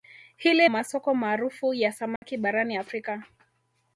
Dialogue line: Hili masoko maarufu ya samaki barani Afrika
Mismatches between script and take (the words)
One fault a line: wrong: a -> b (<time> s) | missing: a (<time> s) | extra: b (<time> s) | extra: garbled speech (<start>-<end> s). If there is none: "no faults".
no faults